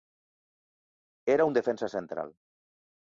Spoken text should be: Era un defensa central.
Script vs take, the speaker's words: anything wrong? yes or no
no